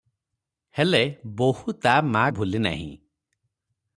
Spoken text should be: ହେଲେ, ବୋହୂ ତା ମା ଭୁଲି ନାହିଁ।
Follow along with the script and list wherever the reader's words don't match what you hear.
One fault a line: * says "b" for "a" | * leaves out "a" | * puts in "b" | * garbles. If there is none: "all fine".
all fine